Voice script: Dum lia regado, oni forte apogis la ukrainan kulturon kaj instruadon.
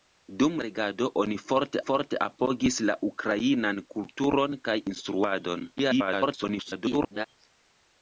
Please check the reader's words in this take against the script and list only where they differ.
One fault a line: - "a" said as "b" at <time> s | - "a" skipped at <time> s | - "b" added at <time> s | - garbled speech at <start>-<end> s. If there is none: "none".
- "lia" skipped at 0.5 s
- "forte" added at 1.8 s
- garbled speech at 5.8-7.3 s